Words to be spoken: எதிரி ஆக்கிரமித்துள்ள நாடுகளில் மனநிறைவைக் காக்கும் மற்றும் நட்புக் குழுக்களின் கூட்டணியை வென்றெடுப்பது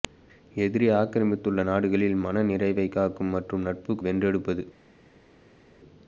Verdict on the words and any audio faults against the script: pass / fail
fail